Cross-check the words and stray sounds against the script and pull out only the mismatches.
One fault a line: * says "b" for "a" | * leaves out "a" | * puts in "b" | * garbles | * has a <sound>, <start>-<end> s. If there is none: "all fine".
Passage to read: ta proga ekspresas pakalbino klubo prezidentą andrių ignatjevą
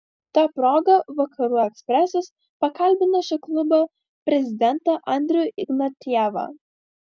* puts in "vakarų"
* puts in "šio"